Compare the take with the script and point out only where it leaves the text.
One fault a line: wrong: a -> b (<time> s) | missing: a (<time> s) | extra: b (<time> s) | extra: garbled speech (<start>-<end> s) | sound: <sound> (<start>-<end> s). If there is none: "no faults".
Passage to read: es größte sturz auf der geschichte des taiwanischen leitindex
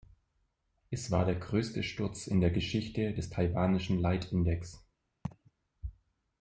extra: war der (1.1 s)
wrong: auf -> in (2.2 s)
sound: laugh (5.2-5.5 s)